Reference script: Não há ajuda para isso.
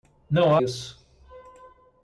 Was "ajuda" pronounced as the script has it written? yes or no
no